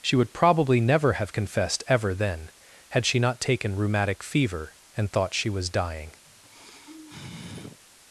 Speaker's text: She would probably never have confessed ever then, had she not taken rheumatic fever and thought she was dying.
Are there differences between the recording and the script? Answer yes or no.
no